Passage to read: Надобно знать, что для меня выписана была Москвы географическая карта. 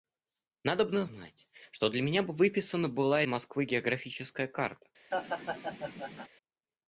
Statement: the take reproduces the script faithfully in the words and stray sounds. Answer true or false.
false